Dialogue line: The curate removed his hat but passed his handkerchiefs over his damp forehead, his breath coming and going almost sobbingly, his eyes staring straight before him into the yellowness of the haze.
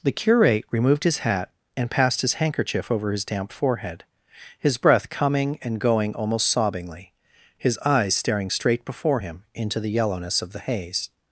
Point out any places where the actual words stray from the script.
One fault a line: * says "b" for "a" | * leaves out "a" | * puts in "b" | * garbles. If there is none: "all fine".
* says "and" for "but"
* says "handkerchief" for "handkerchiefs"